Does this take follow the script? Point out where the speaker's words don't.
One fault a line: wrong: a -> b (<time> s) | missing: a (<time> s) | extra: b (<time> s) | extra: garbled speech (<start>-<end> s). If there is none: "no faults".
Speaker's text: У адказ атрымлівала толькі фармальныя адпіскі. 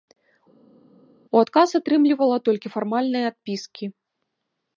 no faults